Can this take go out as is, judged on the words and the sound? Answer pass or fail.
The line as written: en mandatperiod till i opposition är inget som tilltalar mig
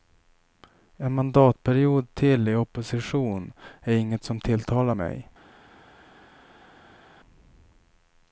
pass